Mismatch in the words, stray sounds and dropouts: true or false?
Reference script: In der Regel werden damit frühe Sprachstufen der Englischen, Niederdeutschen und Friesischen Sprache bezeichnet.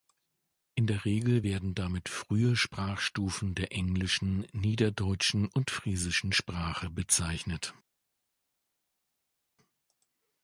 false